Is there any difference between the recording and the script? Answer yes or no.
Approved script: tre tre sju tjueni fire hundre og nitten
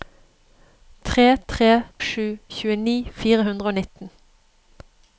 no